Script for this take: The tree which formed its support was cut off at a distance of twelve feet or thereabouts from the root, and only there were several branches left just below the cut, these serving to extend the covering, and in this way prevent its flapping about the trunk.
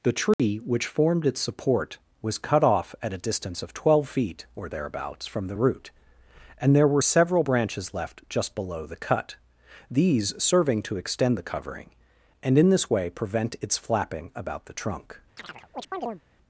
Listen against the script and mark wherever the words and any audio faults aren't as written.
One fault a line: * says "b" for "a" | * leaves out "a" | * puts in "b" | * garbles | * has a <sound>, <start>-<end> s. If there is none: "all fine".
* has a dropout, 0.3-0.4 s
* leaves out "only"
* has a chirp, 15.4-16.2 s